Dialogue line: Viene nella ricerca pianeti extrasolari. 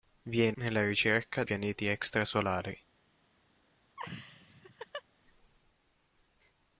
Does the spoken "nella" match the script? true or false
true